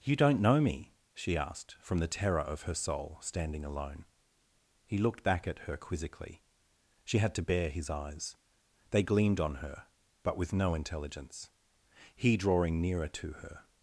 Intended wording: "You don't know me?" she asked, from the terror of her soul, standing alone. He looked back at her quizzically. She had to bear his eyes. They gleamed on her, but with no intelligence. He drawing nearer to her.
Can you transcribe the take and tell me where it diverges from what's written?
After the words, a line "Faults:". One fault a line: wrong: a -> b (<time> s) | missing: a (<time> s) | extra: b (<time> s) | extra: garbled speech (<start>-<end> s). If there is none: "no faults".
"You don't know me?" she asked, from the terror of her soul, standing alone. He looked back at her quizzically. She had to bear his eyes. They gleamed on her, but with no intelligence. He drawing nearer to her.
Faults:
no faults